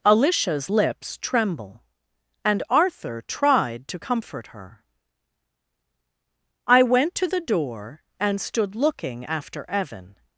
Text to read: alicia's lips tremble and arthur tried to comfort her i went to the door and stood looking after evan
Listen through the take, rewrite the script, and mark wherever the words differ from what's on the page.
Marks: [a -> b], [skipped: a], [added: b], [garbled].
alicia's lips tremble and arthur tried to comfort her i went to the door and stood looking after evan